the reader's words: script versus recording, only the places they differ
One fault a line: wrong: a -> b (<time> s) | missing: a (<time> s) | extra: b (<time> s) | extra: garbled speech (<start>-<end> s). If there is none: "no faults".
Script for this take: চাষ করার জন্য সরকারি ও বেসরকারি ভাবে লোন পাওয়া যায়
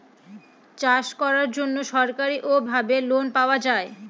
missing: বেসরকারি (2.5 s)